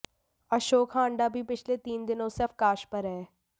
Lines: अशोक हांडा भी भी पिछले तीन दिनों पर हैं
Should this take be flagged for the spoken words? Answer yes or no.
yes